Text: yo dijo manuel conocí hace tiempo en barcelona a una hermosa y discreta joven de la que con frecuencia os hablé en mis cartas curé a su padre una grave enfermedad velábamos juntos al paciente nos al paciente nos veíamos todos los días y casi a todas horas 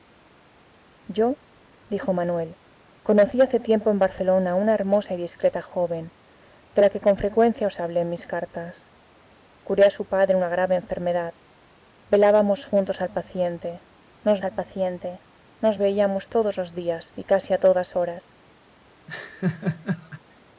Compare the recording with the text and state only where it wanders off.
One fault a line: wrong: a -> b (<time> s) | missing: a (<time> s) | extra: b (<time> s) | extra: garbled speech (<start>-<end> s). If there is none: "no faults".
no faults